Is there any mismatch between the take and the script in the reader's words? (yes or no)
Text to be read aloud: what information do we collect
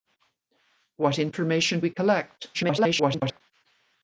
yes